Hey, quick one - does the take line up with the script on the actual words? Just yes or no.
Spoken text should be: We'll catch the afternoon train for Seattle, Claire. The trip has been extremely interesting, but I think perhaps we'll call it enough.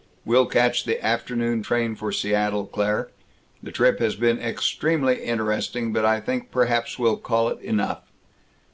yes